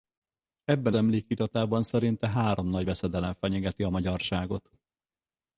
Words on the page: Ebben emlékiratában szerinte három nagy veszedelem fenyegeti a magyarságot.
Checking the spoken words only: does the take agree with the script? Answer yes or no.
yes